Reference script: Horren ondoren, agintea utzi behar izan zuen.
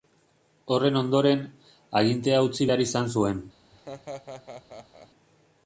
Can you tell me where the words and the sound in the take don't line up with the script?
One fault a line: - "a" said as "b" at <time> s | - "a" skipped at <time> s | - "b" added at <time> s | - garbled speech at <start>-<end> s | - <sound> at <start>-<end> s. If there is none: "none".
- laugh at 3.7-5.1 s